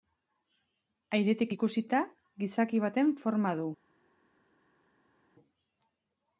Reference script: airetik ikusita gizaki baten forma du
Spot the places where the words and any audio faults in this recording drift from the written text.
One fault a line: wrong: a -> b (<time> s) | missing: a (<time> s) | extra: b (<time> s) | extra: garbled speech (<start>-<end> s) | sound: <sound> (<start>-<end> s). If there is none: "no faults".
no faults